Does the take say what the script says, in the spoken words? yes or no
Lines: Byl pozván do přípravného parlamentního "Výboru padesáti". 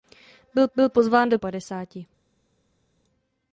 no